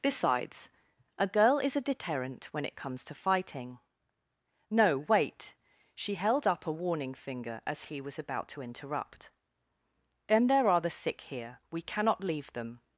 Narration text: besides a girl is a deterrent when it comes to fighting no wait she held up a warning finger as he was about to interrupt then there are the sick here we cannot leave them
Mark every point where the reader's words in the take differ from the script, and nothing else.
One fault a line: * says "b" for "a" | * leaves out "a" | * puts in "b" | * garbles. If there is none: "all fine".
all fine